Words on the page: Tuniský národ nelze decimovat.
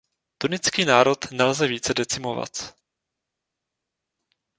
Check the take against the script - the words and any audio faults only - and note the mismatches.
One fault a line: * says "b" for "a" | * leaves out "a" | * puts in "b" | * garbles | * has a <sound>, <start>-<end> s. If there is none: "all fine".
* puts in "více"